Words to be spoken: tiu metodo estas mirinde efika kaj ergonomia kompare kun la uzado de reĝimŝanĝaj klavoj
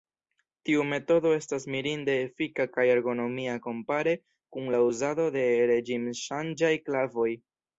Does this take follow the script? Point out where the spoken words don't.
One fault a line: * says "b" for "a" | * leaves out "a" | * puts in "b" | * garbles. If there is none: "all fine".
all fine